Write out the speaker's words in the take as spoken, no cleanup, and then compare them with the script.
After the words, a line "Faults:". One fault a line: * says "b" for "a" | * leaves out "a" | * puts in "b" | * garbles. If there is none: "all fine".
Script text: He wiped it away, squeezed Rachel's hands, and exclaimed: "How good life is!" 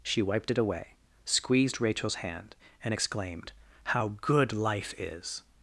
She wiped it away, squeezed Rachel's hand, and exclaimed: "How good life is!"
Faults:
* says "She" for "He"
* says "hand" for "hands"